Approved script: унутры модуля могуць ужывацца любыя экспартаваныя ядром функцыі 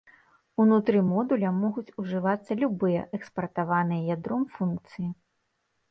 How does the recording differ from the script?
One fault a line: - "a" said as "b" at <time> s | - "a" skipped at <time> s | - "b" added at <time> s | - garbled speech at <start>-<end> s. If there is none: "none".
none